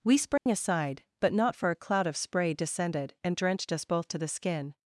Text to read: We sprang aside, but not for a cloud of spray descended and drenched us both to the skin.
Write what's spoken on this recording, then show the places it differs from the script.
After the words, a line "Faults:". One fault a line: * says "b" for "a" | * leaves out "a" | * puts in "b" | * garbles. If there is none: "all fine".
We sprang aside, but not for a cloud of spray descended and drenched us both to the skin.
Faults:
all fine